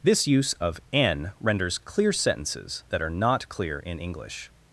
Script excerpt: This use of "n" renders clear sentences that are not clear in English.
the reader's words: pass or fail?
pass